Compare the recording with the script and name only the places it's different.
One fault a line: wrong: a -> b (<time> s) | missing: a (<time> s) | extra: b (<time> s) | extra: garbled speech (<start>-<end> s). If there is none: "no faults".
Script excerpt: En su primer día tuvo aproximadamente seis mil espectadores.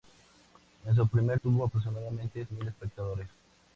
missing: día (1.4 s)
missing: seis (2.5 s)